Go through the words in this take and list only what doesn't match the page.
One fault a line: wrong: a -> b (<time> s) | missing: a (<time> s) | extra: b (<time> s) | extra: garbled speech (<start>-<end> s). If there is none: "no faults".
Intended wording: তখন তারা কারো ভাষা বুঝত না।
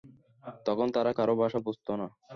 no faults